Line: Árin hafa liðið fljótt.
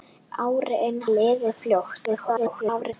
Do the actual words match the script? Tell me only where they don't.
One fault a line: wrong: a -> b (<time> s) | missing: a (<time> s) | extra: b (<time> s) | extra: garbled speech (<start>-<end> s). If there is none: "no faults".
missing: hafa (1.0 s)
extra: garbled speech (2.0-2.9 s)